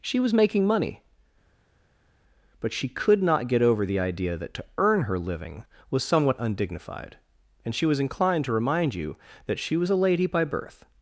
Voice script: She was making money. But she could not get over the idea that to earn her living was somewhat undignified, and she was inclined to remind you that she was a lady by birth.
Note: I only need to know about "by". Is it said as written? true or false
true